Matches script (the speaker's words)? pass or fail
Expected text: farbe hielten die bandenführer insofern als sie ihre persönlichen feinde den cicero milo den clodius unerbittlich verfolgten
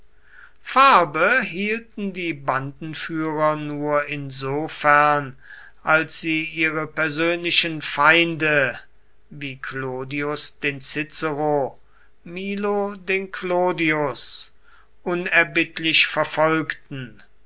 fail